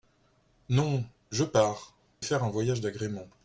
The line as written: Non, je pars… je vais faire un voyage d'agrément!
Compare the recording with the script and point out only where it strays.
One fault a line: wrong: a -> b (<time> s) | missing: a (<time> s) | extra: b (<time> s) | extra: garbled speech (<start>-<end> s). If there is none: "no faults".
missing: je vais (1.9 s)